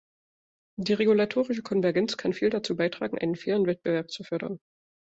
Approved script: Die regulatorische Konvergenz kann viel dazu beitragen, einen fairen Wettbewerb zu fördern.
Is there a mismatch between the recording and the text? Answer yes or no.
no